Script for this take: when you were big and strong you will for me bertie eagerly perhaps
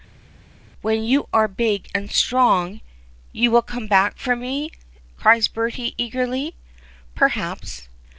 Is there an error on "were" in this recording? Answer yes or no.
yes